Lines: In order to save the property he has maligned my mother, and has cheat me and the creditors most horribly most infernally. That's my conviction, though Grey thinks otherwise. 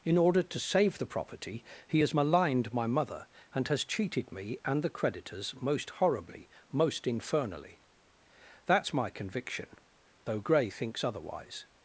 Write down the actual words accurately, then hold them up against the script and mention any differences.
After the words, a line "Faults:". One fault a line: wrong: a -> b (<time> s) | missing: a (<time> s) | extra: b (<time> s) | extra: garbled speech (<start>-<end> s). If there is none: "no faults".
In order to save the property he has maligned my mother, and has cheated me and the creditors most horribly most infernally. That's my conviction, though Grey thinks otherwise.
Faults:
wrong: cheat -> cheated (3.8 s)